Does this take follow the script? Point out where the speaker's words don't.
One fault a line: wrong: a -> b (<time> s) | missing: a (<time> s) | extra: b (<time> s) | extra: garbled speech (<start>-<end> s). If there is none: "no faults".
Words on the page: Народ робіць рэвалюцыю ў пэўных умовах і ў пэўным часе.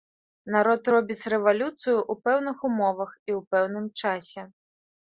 no faults